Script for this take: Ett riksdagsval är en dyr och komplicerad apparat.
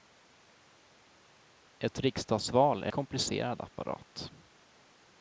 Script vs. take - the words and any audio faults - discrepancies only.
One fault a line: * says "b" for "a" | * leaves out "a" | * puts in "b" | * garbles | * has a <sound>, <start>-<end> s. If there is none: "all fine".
* leaves out "en dyr och"